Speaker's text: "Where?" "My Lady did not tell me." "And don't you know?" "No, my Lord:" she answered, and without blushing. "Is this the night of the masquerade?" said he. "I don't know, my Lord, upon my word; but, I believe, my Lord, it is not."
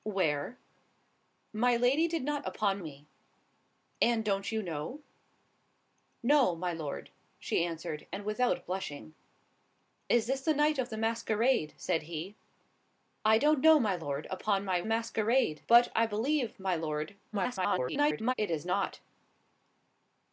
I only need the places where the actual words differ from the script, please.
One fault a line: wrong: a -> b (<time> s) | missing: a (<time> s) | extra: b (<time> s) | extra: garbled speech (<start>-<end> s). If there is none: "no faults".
wrong: tell -> upon (2.4 s)
wrong: word -> masquerade (14.9 s)
extra: garbled speech (17.3-18.3 s)